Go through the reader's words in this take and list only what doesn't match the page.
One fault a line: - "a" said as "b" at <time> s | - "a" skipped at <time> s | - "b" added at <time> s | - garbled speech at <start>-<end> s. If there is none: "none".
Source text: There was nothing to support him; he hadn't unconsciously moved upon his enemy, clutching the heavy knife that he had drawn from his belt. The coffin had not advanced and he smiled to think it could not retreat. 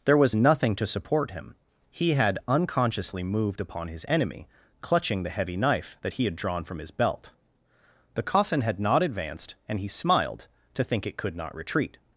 - "hadn't" said as "had" at 2.1 s